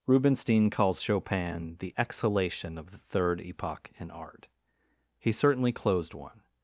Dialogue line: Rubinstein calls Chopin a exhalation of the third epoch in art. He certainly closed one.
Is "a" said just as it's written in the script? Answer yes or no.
no